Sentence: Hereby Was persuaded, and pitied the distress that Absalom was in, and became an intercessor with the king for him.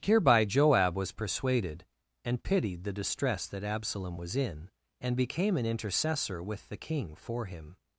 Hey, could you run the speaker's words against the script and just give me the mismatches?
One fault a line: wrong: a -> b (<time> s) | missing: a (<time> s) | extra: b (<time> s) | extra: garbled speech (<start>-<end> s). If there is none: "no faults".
extra: Joab (0.5 s)